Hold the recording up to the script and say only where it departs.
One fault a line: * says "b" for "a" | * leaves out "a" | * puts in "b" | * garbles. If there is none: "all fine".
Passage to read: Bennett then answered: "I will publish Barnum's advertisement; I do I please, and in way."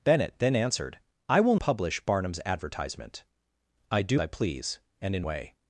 all fine